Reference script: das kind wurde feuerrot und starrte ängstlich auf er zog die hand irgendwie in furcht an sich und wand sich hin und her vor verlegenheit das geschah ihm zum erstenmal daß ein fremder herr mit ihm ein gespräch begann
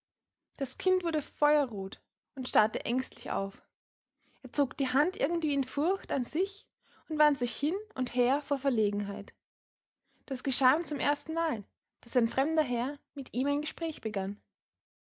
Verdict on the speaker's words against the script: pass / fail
pass